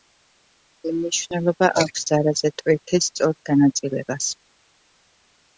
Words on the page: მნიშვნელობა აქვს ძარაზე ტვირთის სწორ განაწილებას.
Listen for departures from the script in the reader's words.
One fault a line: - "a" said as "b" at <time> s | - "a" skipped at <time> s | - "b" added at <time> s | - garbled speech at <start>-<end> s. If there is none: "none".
none